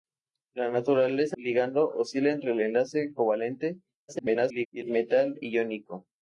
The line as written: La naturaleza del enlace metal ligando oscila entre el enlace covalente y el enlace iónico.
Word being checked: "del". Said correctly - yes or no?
no